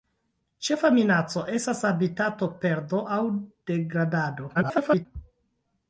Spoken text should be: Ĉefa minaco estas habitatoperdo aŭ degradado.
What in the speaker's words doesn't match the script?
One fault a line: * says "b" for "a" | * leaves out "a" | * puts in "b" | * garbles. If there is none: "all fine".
* garbles